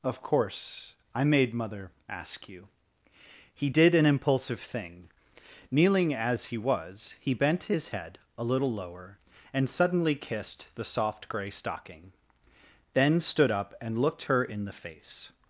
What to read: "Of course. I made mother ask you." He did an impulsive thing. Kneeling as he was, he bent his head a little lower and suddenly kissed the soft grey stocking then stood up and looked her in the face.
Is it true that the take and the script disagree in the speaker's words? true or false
false